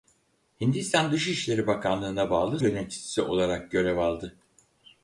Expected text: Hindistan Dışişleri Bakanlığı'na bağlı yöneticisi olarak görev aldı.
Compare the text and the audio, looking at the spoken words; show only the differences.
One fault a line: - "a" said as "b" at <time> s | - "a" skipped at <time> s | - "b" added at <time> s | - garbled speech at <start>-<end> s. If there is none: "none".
none